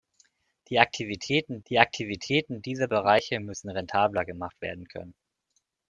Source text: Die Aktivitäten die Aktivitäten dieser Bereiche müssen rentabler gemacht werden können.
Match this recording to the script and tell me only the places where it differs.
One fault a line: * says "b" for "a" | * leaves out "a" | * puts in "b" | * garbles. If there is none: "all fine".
all fine